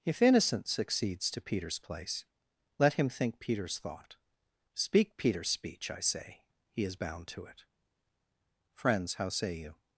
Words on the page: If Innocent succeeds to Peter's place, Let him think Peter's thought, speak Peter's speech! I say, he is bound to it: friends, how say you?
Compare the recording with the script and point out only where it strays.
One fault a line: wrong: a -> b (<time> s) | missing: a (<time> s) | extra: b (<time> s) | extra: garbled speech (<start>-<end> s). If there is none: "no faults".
no faults